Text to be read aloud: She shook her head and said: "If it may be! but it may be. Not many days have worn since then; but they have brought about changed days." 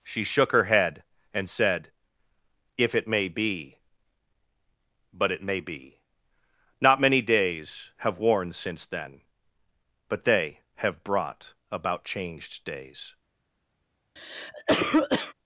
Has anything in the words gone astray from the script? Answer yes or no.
no